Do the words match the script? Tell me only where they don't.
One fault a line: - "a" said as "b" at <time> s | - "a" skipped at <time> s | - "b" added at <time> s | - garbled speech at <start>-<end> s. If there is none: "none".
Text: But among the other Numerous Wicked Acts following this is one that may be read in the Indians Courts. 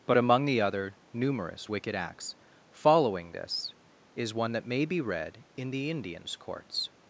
none